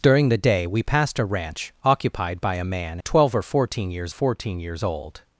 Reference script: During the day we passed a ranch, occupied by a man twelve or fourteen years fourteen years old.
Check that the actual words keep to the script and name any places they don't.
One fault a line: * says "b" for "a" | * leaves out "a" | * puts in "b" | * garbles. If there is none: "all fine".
all fine